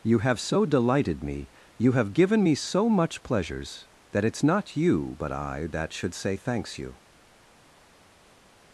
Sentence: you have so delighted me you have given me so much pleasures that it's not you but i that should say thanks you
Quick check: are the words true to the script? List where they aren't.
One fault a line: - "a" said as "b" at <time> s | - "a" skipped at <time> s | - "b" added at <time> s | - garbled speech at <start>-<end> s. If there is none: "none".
none